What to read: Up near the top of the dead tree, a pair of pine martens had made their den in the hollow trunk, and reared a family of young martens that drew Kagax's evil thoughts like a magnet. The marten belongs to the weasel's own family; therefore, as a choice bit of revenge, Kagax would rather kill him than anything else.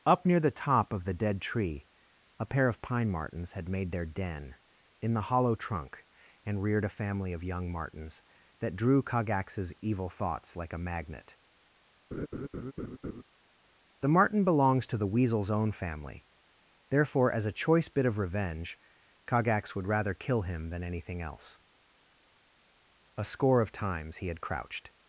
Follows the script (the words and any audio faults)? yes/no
no